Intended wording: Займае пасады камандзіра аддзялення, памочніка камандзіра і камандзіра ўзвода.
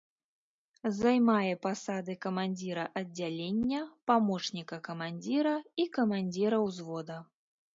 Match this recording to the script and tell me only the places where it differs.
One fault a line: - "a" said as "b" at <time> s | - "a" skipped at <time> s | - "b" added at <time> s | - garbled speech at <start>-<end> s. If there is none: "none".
none